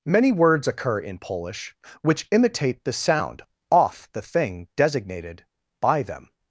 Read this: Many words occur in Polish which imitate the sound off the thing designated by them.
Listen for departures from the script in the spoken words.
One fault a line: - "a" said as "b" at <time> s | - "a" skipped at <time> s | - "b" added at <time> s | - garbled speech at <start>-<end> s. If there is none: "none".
none